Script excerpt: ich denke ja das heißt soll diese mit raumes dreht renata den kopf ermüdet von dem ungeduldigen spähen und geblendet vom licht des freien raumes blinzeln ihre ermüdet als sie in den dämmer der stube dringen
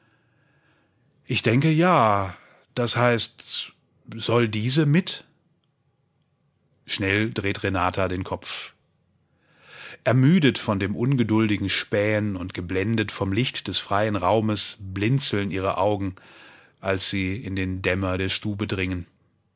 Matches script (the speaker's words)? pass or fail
fail